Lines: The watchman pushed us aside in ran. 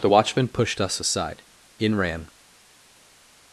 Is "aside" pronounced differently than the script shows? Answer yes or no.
no